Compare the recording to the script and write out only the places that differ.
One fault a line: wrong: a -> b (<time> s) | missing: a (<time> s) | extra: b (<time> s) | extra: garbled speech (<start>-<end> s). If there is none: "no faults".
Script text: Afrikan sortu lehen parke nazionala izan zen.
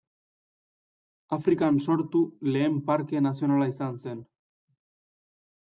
no faults